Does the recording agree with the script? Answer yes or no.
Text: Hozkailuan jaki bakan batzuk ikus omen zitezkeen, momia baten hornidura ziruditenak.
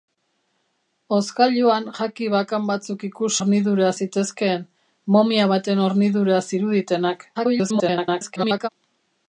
no